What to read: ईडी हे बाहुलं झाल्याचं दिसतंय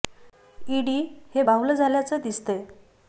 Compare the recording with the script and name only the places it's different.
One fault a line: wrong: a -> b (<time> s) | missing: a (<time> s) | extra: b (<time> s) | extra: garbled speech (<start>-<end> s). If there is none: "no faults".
no faults